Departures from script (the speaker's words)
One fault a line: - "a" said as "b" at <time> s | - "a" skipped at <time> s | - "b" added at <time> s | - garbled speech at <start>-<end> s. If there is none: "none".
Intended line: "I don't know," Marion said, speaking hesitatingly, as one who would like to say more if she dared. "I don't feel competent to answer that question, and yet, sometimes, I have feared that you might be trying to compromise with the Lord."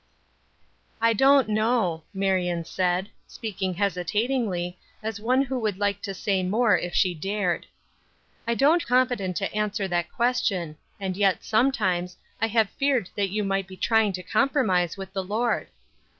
- "feel" skipped at 8.8 s